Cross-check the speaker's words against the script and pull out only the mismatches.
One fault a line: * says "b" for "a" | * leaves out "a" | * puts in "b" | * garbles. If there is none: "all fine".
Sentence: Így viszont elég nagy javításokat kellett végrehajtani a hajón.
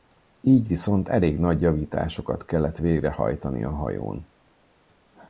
all fine